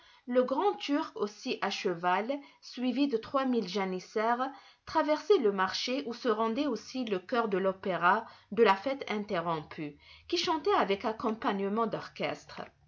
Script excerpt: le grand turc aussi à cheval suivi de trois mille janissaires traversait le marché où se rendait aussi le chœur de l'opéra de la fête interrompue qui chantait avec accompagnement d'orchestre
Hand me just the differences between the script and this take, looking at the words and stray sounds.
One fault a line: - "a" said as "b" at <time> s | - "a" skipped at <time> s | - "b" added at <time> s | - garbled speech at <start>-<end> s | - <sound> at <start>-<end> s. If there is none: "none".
none